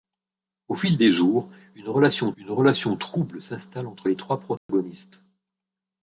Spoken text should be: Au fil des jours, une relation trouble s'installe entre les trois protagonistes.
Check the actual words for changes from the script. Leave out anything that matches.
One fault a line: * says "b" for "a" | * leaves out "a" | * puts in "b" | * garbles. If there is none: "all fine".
* puts in "une relation"